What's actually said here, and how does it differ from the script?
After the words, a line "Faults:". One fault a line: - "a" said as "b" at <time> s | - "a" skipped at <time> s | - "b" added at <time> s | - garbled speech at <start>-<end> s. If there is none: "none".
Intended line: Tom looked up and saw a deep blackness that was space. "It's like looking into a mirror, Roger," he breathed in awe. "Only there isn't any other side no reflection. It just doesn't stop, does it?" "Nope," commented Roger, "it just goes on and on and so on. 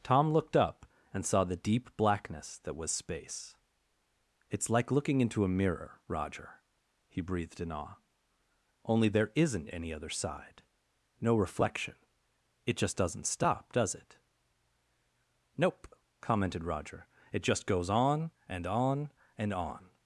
Tom looked up and saw the deep blackness that was space. "It's like looking into a mirror, Roger," he breathed in awe. "Only there isn't any other side no reflection. It just doesn't stop, does it?" "Nope," commented Roger, "it just goes on and on and on.
Faults:
- "a" said as "the" at 1.4 s
- "so" skipped at 19.5 s